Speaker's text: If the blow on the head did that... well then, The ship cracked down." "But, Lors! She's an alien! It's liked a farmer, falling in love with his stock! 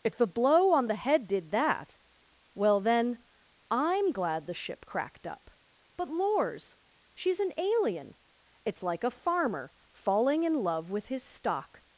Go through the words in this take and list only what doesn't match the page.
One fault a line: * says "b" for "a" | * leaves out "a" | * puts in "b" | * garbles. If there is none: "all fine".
* puts in "I'm glad"
* says "up" for "down"
* says "like" for "liked"